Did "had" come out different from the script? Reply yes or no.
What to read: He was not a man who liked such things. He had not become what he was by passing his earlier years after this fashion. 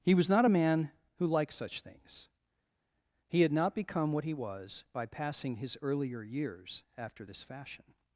no